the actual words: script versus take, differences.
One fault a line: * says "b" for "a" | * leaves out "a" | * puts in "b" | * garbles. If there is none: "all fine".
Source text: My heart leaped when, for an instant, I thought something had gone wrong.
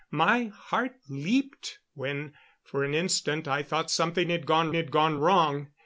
* puts in "had gone"